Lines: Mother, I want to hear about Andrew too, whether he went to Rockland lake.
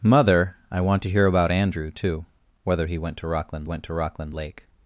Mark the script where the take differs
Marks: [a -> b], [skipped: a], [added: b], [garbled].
Mother, I want to hear about Andrew too, whether he went to Rockland [added: went to Rockland] lake.